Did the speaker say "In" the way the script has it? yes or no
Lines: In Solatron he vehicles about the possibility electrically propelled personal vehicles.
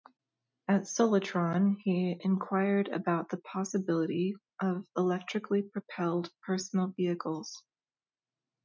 no